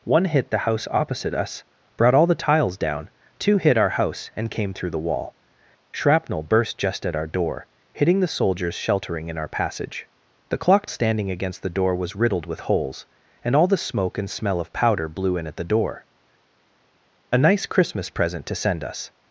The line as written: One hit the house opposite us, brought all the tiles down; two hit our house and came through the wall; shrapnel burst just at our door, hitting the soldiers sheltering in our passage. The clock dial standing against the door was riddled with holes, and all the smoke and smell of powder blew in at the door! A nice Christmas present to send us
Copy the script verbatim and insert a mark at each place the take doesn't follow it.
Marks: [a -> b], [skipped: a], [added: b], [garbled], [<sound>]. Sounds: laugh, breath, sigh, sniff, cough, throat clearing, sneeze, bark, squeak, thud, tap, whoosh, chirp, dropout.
One hit the house opposite us, brought all the tiles down; two hit our house and came through the wall; shrapnel burst just at our door, hitting the soldiers sheltering in our passage. The clock [skipped: dial] standing against the door was riddled with holes, and all the smoke and smell of powder blew in at the door! A nice Christmas present to send us